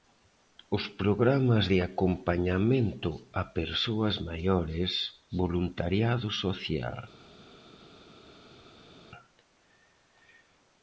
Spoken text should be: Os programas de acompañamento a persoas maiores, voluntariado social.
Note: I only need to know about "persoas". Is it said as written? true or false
true